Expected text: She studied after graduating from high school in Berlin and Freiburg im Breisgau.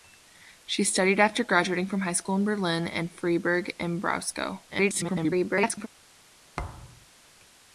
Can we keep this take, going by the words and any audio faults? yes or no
no